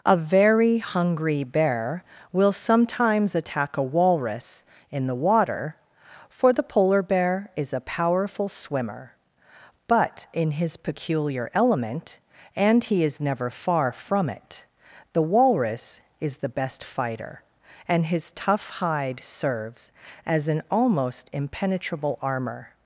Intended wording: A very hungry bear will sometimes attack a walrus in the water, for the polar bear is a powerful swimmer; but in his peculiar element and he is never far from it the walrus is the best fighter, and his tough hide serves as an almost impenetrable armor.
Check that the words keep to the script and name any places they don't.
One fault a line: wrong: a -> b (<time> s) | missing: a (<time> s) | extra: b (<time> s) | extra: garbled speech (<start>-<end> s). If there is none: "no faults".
no faults